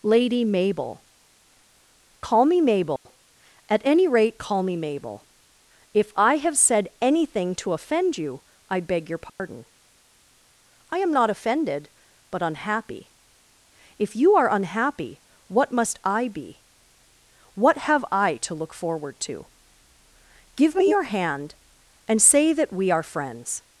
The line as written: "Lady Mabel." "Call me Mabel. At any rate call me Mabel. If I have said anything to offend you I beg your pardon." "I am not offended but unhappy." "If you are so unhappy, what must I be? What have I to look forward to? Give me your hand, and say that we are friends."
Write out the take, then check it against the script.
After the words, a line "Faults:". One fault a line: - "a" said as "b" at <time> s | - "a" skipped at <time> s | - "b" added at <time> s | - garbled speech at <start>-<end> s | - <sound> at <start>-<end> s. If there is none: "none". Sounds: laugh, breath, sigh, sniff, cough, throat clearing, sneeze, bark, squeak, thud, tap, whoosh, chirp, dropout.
"Lady Mabel." "Call me Mabel. At any rate call me Mabel. If I have said anything to offend you I beg your pardon." "I am not offended but unhappy." "If you are unhappy, what must I be? What have I to look forward to? Give me your hand, and say that we are friends."
Faults:
- dropout at 3.0-3.1 s
- dropout at 9.3-9.4 s
- "so" skipped at 14.5 s